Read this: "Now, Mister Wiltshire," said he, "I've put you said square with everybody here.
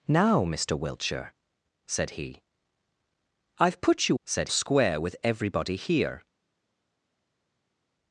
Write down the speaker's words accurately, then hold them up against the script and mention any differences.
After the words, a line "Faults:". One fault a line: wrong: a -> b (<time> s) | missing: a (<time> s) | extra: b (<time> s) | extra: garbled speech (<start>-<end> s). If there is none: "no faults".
"Now, Mister Wiltshire," said he, "I've put you said square with everybody here.
Faults:
no faults